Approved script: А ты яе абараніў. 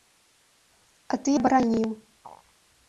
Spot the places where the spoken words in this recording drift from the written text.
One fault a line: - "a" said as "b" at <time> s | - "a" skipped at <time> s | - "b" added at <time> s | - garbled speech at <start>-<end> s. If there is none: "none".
- "яе" skipped at 1.3 s